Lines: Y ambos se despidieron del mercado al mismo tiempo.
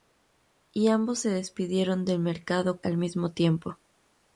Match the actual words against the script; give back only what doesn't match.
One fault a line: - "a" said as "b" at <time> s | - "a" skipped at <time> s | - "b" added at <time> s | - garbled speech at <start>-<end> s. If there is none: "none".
none